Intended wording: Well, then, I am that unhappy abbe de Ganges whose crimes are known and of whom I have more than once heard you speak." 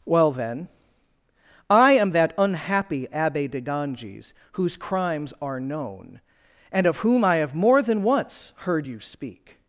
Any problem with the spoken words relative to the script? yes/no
no